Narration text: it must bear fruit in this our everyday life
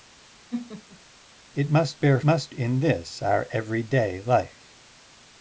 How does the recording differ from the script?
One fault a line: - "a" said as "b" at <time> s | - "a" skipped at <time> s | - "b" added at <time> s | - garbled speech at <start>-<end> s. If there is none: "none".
- "fruit" said as "must" at 2.3 s